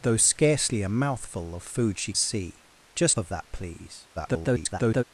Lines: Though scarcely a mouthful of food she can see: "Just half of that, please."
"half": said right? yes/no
no